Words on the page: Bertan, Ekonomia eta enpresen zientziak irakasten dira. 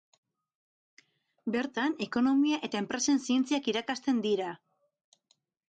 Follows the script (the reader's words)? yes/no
yes